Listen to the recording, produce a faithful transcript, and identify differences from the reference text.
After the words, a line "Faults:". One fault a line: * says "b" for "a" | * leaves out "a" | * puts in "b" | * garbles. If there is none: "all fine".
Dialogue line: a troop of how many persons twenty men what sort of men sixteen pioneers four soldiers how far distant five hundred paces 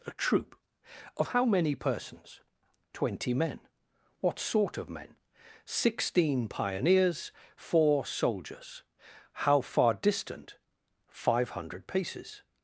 a troop of how many persons twenty men what sort of men sixteen pioneers four soldiers how far distant five hundred paces
Faults:
all fine